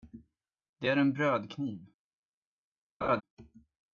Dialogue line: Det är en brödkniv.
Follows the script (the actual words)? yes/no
yes